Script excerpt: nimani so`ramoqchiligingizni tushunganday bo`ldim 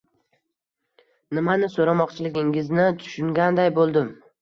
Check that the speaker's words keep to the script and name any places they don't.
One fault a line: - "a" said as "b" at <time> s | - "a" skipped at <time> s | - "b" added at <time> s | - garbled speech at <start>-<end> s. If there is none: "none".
none